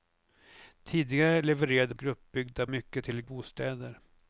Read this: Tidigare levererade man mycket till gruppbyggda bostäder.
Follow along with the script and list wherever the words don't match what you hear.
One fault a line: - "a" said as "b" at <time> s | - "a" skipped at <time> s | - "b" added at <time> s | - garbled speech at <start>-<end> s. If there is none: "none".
- "man" said as "gruppbyggda" at 1.9 s
- "gruppbyggda" skipped at 3.2 s